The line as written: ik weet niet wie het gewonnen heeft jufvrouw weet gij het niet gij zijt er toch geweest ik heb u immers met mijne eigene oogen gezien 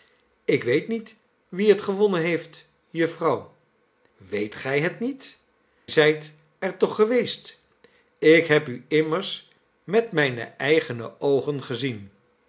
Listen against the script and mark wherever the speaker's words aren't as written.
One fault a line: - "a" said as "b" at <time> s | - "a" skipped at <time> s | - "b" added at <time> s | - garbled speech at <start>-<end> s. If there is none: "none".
- "gij" skipped at 5.4 s